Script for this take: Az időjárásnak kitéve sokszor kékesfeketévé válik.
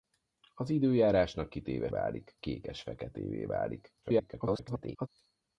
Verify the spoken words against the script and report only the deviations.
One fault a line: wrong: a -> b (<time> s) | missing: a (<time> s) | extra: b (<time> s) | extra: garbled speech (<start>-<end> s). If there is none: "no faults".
wrong: sokszor -> válik (1.9 s)
extra: garbled speech (4.0-5.1 s)